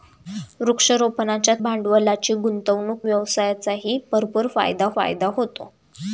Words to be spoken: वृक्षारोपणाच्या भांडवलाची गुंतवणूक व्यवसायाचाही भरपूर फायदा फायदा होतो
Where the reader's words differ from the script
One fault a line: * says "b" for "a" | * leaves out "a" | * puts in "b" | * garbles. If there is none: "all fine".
all fine